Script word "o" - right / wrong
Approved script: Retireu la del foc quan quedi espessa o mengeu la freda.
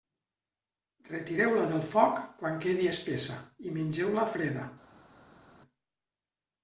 wrong